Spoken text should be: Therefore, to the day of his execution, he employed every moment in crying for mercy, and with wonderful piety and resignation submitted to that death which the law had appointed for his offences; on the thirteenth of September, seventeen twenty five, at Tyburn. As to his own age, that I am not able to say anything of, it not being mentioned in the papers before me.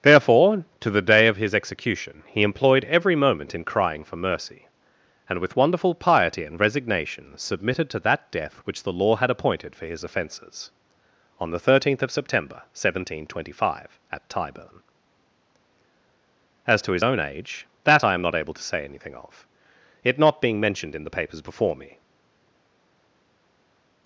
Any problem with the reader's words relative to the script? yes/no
no